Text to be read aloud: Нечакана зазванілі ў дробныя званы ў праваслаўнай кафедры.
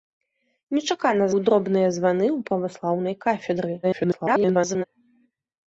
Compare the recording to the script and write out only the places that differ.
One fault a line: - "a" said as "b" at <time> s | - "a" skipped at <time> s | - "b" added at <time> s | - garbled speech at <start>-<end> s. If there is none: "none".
- "зазванілі" skipped at 1.3 s
- garbled speech at 3.8-4.8 s